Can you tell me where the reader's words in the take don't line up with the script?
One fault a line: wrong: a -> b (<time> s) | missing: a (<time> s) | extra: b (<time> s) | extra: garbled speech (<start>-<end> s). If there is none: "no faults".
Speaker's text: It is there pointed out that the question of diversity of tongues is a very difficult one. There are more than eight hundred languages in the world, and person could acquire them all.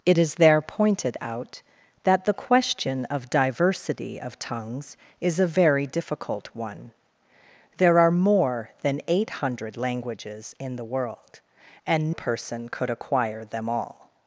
no faults